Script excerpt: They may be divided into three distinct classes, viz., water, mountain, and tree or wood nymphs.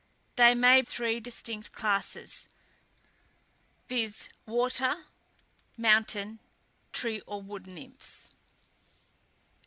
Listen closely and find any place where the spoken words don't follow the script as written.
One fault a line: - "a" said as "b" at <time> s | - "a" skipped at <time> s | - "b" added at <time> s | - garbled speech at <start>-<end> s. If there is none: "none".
- "be divided into" skipped at 0.8 s
- "and" skipped at 6.4 s